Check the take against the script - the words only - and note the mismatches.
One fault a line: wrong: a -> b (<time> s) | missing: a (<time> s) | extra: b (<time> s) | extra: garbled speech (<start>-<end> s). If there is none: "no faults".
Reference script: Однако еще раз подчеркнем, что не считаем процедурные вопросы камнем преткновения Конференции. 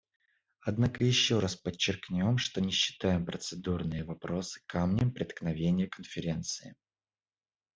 no faults